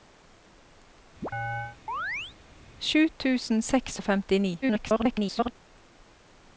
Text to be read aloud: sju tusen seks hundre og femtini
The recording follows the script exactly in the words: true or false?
false